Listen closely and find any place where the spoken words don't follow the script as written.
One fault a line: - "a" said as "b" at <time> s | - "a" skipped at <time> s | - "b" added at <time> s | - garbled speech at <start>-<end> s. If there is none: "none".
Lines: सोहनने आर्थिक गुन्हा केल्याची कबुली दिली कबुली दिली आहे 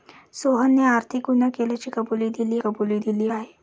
none